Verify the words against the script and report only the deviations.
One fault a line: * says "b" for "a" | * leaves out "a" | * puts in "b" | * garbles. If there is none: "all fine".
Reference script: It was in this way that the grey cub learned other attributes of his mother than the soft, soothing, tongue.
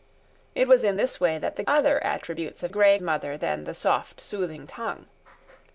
* leaves out "grey cub learned"
* says "grey" for "his"